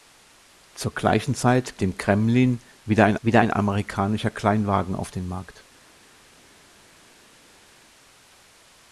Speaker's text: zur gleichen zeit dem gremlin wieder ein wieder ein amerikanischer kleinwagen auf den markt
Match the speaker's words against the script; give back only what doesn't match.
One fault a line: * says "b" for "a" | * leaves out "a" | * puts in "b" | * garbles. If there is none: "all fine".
all fine